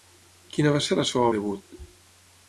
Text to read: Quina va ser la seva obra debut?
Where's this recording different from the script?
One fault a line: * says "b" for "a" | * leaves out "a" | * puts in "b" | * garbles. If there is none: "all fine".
* leaves out "obra"